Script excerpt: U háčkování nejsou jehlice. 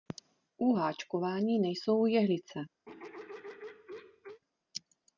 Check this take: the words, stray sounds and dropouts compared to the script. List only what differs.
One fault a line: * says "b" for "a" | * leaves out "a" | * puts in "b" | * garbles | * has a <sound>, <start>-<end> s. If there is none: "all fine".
* has a throat clearing, 2.9-4.4 s